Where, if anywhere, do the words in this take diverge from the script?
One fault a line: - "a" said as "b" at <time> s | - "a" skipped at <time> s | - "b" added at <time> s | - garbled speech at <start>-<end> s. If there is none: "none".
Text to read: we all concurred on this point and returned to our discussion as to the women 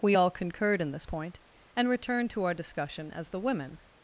- "on" said as "in" at 0.8 s
- "to" skipped at 3.3 s